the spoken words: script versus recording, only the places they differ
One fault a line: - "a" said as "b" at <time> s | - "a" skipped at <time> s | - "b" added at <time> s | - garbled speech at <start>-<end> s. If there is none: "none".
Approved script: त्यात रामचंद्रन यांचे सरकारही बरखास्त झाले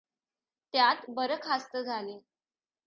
- "रामचंद्रन यांचे सरकारही" skipped at 1.0 s